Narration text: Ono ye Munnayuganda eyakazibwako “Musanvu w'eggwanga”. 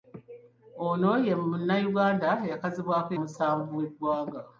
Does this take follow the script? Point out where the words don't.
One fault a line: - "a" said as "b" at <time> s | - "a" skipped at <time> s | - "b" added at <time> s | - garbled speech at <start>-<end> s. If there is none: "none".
none